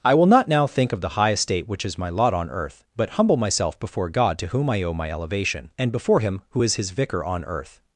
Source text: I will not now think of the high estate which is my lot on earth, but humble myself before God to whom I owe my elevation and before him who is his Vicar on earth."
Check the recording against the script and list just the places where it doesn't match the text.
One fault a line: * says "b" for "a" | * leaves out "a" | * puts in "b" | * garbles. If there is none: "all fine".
all fine